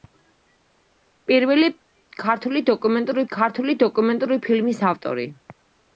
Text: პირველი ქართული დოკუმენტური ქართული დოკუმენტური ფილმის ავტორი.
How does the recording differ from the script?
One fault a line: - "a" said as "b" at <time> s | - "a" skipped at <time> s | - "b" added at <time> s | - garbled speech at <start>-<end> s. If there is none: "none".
none